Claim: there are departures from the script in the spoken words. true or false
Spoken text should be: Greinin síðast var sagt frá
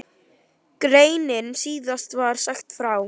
false